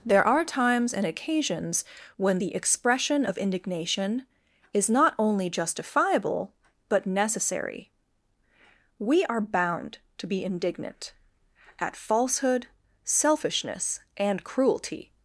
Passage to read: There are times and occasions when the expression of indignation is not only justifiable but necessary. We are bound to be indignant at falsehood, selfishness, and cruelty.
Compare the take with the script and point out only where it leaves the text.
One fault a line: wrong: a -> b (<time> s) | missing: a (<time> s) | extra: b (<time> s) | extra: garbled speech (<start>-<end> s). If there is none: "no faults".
no faults